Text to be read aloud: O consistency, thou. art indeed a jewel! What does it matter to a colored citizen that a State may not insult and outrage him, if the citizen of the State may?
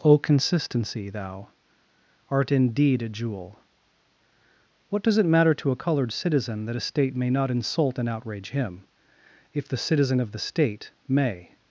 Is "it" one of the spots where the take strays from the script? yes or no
no